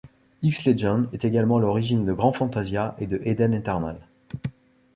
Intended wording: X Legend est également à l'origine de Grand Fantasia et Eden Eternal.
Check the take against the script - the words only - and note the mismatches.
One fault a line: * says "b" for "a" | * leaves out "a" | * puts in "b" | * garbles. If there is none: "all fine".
* puts in "de"